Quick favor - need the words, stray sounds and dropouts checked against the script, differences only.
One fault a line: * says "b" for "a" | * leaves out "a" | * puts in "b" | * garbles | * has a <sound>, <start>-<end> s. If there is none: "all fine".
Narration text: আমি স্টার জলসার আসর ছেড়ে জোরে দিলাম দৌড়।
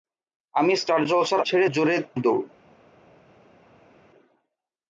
* leaves out "আসর"
* leaves out "দিলাম"